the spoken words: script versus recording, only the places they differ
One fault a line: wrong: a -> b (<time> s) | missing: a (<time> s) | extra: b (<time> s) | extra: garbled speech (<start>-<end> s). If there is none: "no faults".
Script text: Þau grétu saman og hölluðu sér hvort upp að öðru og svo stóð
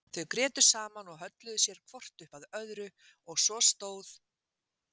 no faults